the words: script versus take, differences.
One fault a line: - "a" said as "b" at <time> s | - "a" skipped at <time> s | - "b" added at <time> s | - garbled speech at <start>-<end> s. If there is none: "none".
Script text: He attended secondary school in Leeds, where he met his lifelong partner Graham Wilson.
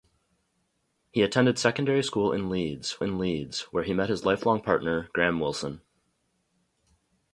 - "in Leeds" added at 3.0 s